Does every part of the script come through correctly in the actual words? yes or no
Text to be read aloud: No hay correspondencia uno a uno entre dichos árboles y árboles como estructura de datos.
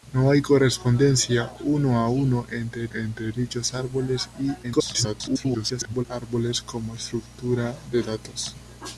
no